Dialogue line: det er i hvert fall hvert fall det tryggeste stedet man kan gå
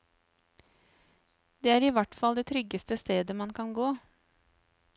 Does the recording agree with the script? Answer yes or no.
no